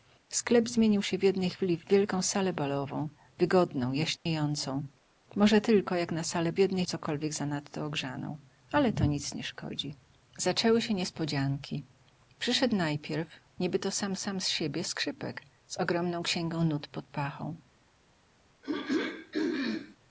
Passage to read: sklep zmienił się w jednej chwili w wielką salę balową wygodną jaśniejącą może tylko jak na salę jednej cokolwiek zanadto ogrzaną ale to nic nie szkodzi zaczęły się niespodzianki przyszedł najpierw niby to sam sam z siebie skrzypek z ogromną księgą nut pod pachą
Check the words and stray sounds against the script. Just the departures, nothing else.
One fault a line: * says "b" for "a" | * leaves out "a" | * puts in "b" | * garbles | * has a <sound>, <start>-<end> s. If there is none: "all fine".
* has a dropout, 4.2-4.3 s
* has a throat clearing, 18.6-20.0 s